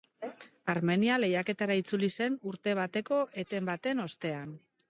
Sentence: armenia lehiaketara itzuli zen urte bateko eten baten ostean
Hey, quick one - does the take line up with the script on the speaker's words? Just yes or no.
yes